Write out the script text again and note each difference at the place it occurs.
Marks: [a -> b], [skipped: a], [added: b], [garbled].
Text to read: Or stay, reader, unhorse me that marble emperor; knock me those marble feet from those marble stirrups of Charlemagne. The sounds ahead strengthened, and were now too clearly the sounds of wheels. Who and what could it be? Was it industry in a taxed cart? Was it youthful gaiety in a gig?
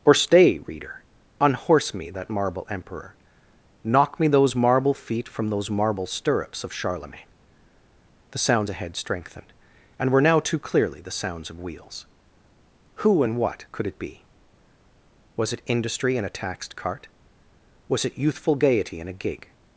Or stay, reader, unhorse me that marble emperor; knock me those marble feet from those marble stirrups of Charlemagne. The sounds ahead strengthened, and were now too clearly the sounds of wheels. Who and what could it be? Was it industry in a taxed cart? Was it youthful gaiety in a gig?